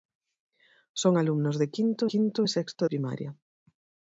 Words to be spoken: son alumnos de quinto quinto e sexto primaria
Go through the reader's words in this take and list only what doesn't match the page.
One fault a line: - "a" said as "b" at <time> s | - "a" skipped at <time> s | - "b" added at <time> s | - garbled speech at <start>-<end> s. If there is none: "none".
none